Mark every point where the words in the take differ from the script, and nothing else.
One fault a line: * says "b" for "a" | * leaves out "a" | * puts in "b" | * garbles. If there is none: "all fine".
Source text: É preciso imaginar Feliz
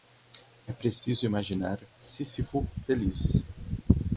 * puts in "Sísifo"